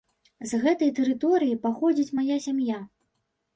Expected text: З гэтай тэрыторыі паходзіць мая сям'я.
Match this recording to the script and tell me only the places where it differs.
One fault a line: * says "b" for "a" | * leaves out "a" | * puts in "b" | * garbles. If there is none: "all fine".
all fine